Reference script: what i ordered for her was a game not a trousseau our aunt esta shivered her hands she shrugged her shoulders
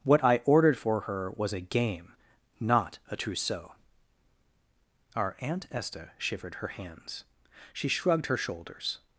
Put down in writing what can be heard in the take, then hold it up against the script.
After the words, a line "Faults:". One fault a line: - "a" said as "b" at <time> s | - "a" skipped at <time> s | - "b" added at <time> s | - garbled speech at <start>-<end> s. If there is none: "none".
what i ordered for her was a game not a trousseau our aunt esta shivered her hands she shrugged her shoulders
Faults:
none